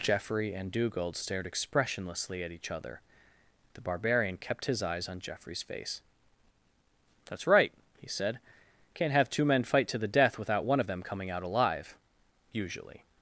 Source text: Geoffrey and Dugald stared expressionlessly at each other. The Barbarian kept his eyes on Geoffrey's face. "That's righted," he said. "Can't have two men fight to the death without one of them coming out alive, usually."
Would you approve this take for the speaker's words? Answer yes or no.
no